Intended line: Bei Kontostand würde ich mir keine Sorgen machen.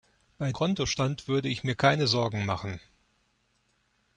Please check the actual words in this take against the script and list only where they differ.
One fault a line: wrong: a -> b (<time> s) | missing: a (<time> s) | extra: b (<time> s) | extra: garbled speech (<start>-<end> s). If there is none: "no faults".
no faults